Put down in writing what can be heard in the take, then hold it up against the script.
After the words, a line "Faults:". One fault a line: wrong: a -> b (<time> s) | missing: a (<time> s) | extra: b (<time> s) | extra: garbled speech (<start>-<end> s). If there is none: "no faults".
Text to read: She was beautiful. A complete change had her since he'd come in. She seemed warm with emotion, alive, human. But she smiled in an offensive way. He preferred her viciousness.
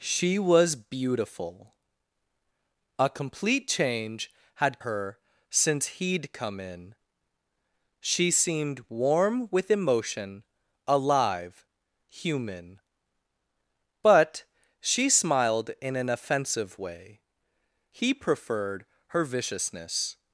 She was beautiful. A complete change had her since he'd come in. She seemed warm with emotion, alive, human. But she smiled in an offensive way. He preferred her viciousness.
Faults:
no faults